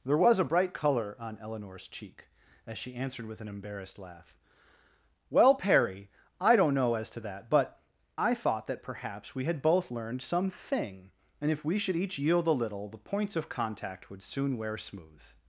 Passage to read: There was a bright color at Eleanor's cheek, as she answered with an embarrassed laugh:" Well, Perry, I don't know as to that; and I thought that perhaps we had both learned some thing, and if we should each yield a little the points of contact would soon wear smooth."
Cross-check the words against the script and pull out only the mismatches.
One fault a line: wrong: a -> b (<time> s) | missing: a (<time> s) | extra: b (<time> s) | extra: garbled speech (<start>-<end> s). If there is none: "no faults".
wrong: at -> on (1.2 s)
wrong: and -> but (7.5 s)